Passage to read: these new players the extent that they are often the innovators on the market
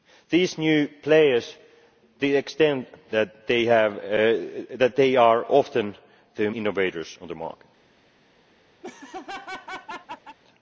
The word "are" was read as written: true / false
true